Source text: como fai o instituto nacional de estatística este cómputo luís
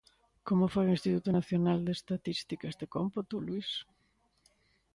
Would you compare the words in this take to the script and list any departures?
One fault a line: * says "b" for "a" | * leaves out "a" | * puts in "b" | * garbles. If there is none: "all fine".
all fine